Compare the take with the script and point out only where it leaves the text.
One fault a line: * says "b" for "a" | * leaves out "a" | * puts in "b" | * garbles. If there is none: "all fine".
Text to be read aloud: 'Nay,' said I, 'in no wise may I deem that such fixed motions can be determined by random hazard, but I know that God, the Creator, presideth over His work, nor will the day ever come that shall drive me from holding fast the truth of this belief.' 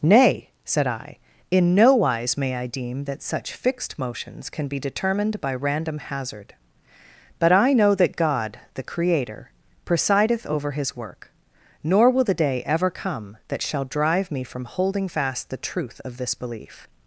all fine